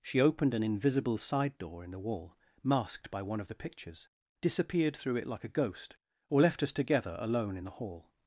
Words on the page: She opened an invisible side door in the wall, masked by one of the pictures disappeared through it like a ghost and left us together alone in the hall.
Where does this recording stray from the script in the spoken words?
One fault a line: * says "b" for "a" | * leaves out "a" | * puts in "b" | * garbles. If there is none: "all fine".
* says "or" for "and"